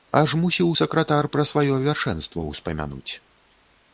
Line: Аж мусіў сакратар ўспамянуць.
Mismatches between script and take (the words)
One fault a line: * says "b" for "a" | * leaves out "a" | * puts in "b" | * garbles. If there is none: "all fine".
* puts in "пра сваё вяршэнства"